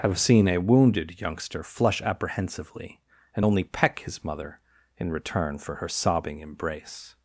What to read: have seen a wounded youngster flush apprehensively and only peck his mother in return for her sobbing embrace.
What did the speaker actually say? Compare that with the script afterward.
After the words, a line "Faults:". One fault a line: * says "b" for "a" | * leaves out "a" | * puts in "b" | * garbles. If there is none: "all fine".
have seen a wounded youngster flush apprehensively and only peck his mother in return for her sobbing embrace.
Faults:
all fine